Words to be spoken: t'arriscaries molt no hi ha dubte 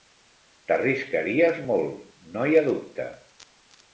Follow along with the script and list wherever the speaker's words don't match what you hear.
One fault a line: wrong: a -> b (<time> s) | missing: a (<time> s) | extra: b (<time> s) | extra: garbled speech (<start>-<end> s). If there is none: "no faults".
no faults